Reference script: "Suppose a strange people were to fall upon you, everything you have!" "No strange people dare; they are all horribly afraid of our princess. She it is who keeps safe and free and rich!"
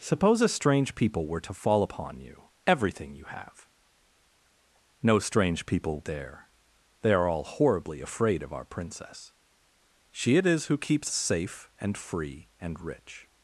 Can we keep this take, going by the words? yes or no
yes